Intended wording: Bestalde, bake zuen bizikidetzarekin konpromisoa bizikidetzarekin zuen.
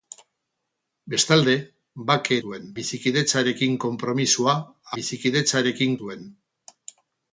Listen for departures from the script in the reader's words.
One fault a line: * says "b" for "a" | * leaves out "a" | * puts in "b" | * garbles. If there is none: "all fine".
all fine